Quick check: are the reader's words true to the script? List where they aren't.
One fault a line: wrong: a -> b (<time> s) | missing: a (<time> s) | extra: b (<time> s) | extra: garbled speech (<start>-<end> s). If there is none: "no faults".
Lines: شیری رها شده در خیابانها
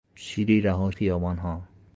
missing: شده در (0.9 s)